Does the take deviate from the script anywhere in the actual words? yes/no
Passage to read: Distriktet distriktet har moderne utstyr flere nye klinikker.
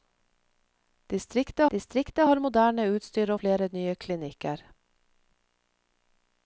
no